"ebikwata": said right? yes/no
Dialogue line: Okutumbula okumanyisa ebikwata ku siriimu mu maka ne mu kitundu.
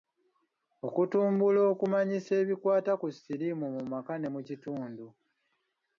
yes